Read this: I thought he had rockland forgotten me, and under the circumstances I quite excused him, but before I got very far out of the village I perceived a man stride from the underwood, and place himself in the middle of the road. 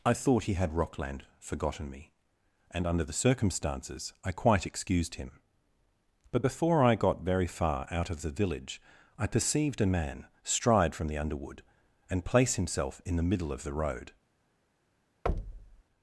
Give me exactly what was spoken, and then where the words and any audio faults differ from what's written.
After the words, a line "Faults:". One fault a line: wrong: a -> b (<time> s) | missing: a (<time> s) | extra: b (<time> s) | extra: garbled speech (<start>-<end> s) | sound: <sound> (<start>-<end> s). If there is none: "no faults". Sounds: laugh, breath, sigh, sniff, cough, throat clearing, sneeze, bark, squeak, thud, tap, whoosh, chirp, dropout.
I thought he had rockland forgotten me, and under the circumstances I quite excused him, but before I got very far out of the village I perceived a man stride from the underwood, and place himself in the middle of the road.
Faults:
sound: thud (15.3-15.8 s)